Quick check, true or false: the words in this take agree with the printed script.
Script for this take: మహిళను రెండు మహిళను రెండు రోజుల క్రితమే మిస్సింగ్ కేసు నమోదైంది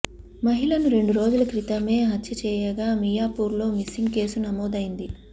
false